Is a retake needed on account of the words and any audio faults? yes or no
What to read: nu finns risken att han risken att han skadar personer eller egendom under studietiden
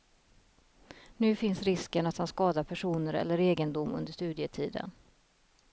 yes